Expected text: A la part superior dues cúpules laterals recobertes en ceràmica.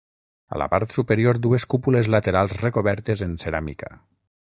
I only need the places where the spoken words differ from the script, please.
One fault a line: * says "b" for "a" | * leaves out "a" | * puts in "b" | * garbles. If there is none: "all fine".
all fine